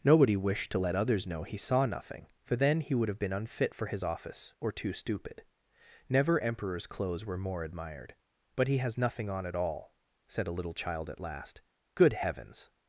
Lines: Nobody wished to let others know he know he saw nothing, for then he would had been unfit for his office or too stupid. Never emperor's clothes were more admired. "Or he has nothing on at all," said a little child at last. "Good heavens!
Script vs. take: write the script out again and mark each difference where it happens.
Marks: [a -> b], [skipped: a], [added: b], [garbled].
Nobody wished to let others know he [skipped: know he] saw nothing, for then he would [had -> have] been unfit for his office or too stupid. Never emperor's clothes were more admired. ["Or -> But] he has nothing on at all," said a little child at last. "Good heavens!